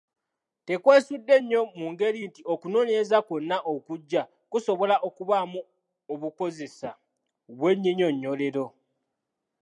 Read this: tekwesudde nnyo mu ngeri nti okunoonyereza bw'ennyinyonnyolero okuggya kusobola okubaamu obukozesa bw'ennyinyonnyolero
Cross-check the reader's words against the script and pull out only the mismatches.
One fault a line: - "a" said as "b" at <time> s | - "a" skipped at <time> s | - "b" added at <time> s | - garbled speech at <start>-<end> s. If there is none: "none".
- "bw'ennyinyonnyolero" said as "kwonna" at 3.3 s